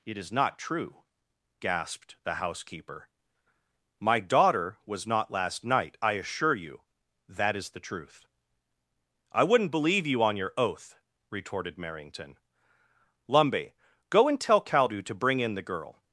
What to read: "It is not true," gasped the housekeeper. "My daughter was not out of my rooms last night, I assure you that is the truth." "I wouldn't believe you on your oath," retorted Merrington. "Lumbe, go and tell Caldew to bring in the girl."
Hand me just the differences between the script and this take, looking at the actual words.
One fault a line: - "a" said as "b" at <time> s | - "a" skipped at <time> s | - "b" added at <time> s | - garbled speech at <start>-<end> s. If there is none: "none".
- "out of my rooms" skipped at 5.3 s